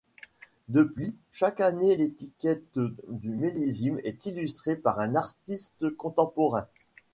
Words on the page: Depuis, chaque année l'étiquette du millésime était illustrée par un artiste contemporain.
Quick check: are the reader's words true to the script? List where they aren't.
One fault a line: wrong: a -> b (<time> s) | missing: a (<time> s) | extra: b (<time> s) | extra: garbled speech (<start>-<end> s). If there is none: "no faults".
wrong: était -> est (4.0 s)